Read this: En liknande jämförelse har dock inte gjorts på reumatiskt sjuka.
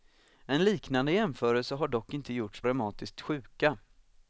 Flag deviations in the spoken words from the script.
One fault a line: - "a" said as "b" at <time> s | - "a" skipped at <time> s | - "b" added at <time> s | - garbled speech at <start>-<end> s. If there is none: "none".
- "på" skipped at 2.6 s